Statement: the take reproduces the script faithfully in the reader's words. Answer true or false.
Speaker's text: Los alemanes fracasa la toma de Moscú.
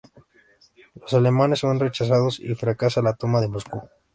false